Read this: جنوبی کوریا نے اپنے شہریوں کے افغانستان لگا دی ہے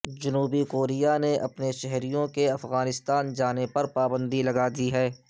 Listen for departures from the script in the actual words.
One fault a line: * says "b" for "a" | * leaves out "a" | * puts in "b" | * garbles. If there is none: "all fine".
* puts in "جانے پر پابندی"